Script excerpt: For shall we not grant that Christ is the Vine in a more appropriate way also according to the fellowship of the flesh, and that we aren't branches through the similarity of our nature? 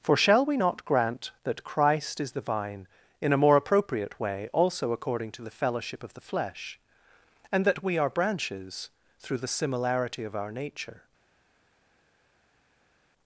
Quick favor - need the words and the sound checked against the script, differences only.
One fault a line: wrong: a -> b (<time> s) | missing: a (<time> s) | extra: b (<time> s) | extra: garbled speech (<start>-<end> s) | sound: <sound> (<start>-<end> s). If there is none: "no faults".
wrong: aren't -> are (8.0 s)